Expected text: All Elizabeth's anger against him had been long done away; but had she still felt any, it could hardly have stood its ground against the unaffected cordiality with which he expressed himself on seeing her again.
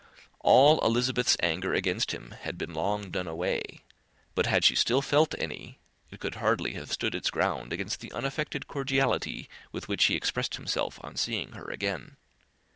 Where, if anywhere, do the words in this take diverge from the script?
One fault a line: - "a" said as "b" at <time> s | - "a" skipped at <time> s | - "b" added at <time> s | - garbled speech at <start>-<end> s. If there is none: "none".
none